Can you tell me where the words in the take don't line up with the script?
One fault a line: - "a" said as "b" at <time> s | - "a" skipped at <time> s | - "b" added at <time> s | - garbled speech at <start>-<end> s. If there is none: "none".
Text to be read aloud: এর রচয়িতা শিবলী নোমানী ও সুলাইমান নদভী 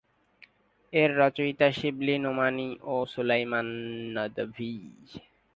none